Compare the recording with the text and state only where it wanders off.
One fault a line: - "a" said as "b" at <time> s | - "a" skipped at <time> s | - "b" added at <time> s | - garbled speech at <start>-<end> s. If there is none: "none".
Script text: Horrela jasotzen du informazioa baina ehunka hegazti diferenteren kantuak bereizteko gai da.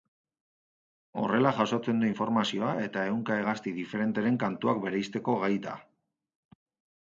- "baina" said as "eta" at 2.8 s